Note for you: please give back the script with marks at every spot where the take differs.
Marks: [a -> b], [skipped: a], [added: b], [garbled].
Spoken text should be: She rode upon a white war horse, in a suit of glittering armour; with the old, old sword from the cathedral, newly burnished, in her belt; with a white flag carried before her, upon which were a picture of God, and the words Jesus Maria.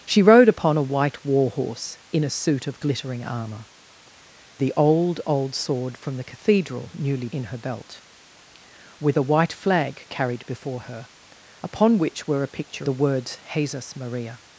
She rode upon a white war horse, in a suit of glittering armour; [skipped: with] the old, old sword from the cathedral, newly [skipped: burnished,] in her belt; with a white flag carried before her, upon which were a picture [skipped: of God, and] the words Jesus Maria.